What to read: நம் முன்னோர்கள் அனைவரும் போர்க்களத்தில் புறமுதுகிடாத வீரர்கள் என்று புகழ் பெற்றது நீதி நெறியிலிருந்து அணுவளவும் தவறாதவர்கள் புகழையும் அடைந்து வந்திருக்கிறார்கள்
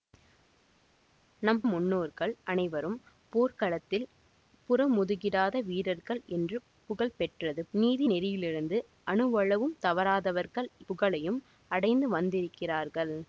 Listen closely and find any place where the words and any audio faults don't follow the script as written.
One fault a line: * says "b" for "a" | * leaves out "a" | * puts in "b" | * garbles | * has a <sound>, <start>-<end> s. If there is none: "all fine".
all fine